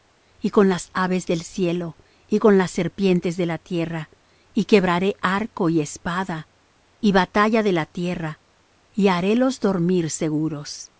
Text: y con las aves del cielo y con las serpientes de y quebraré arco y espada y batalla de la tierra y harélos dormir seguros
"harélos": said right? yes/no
yes